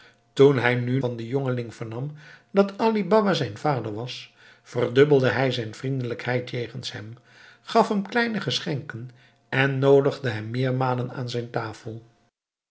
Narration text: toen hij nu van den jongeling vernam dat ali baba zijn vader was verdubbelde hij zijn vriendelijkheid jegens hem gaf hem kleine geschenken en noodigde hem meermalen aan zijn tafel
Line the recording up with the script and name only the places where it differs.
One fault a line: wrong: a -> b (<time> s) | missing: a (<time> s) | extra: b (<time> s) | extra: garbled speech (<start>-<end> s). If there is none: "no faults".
no faults